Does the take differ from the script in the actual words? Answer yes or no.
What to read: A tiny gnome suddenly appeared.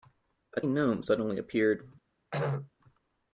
yes